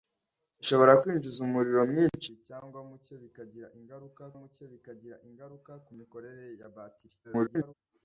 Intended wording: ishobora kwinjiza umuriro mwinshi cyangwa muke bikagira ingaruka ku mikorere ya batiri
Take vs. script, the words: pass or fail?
fail